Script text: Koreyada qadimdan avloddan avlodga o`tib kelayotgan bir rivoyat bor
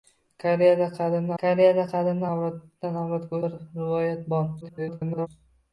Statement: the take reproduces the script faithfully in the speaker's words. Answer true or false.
false